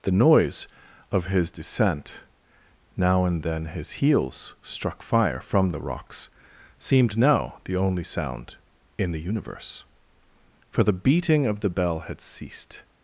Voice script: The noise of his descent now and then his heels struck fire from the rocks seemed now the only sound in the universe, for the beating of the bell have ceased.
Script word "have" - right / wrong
wrong